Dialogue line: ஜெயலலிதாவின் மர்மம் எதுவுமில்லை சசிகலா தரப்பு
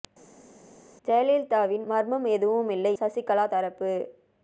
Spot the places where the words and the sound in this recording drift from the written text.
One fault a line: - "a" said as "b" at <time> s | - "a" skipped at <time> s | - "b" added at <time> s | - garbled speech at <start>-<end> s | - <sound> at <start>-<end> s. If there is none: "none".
none